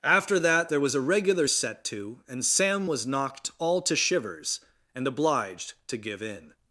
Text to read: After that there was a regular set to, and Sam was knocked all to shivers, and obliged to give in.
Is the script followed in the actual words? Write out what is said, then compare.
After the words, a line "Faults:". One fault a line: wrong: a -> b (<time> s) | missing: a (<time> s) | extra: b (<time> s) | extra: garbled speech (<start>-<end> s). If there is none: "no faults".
After that there was a regular set to, and Sam was knocked all to shivers, and obliged to give in.
Faults:
no faults